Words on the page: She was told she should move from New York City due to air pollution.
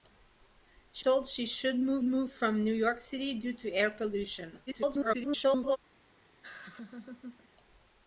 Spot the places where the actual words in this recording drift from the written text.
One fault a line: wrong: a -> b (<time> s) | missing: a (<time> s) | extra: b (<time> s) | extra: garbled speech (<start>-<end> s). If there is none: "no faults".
missing: was (1.1 s)
extra: move (2.0 s)
extra: garbled speech (4.7-5.8 s)